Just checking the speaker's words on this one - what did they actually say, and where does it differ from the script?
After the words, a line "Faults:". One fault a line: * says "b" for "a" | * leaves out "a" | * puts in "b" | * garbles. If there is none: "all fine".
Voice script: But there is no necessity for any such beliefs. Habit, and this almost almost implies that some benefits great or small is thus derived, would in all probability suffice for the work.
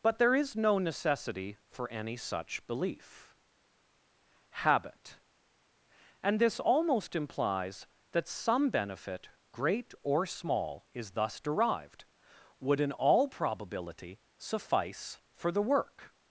But there is no necessity for any such belief. Habit, and this almost implies that some benefit great or small is thus derived, would in all probability suffice for the work.
Faults:
* says "belief" for "beliefs"
* leaves out "almost"
* says "benefit" for "benefits"